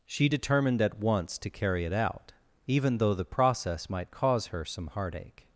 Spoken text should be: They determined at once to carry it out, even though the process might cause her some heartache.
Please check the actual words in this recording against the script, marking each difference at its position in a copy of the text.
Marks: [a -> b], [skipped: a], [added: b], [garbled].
[They -> She] determined at once to carry it out, even though the process might cause her some heartache.